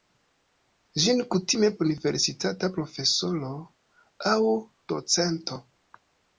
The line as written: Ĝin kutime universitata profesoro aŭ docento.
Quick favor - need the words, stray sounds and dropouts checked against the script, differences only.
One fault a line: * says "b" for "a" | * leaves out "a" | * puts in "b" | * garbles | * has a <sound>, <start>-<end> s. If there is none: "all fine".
all fine